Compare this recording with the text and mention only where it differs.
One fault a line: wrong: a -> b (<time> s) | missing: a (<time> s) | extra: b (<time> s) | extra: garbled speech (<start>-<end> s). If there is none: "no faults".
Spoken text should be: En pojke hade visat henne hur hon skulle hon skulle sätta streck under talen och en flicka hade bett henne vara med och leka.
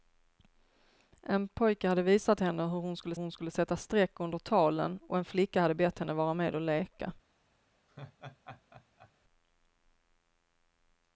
no faults